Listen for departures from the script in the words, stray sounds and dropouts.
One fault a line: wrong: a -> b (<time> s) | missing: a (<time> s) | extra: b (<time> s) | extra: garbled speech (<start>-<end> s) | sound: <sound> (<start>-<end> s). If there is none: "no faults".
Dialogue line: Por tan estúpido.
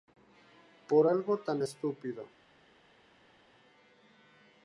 extra: algo (1.0 s)